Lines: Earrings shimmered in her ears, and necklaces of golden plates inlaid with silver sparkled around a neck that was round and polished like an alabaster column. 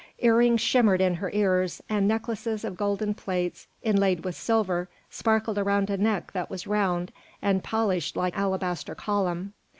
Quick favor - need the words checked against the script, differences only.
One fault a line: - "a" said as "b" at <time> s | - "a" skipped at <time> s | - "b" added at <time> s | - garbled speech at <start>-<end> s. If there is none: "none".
- "an" skipped at 8.3 s